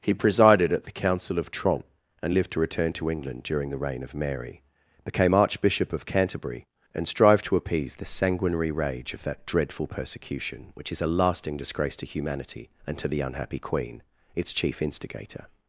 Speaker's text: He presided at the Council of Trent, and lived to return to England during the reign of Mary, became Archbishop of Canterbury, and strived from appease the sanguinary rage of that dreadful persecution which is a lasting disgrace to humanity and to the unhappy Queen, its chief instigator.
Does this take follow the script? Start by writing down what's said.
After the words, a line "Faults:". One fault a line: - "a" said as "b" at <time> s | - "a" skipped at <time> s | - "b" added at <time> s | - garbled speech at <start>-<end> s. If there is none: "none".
He presided at the Council of Trent, and lived to return to England during the reign of Mary, became Archbishop of Canterbury, and strived to appease the sanguinary rage of that dreadful persecution which is a lasting disgrace to humanity and to the unhappy Queen, its chief instigator.
Faults:
- "from" said as "to" at 7.5 s